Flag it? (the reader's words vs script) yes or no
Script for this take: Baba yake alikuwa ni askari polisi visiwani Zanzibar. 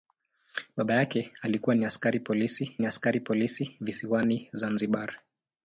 yes